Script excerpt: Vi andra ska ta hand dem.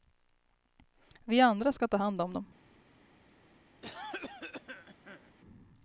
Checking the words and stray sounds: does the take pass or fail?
fail